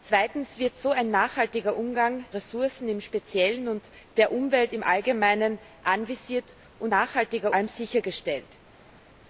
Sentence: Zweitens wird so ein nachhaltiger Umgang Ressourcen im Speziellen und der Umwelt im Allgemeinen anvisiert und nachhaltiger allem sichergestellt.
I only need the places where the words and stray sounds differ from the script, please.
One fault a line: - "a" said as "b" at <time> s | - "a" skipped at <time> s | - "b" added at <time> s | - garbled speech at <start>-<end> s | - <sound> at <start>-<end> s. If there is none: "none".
none